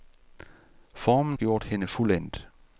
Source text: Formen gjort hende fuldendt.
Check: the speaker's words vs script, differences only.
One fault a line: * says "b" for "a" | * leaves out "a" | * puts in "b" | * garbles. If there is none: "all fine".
all fine